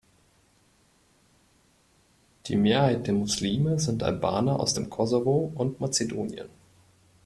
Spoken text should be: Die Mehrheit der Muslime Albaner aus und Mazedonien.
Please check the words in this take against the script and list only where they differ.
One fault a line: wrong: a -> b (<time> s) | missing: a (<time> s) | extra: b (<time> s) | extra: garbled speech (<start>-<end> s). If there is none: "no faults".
extra: sind (3.8 s)
extra: dem Kosovo (4.7 s)